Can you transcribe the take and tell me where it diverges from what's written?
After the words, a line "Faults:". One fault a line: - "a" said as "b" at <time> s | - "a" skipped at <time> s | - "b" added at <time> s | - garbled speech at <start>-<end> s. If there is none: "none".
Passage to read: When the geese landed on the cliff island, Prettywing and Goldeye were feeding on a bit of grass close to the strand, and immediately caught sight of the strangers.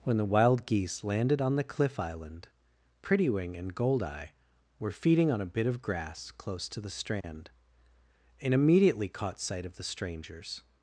When the wild geese landed on the cliff island, Prettywing and Goldeye were feeding on a bit of grass close to the strand, and immediately caught sight of the strangers.
Faults:
- "wild" added at 0.2 s